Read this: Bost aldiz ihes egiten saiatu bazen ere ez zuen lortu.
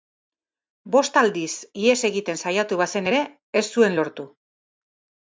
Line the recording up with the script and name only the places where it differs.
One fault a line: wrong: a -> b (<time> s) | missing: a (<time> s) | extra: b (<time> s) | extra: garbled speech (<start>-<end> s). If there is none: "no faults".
no faults